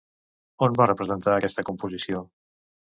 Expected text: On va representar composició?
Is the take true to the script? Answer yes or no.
no